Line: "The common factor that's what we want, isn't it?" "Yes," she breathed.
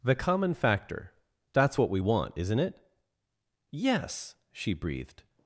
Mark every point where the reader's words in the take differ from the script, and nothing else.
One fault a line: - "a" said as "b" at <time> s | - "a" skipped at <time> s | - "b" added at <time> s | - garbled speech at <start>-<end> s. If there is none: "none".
none